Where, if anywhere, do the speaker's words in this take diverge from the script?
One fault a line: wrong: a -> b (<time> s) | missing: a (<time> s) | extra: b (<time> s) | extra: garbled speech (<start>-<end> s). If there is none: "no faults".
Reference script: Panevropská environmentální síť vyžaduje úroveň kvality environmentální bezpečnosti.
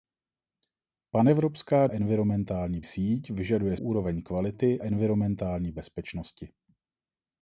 no faults